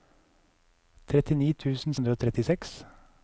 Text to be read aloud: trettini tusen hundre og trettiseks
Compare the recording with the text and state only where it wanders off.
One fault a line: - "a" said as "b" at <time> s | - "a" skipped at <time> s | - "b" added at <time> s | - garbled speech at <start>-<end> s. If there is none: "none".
none